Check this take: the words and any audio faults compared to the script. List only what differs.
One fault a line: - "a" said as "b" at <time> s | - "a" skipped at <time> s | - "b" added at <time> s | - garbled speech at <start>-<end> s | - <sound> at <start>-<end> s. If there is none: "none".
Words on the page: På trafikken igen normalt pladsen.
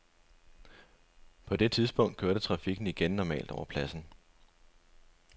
- "det tidspunkt kørte" added at 1.6 s
- "over" added at 3.5 s